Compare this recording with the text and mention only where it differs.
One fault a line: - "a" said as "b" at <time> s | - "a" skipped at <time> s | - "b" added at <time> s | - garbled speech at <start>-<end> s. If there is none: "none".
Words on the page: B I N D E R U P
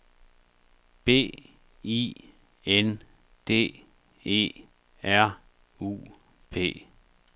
none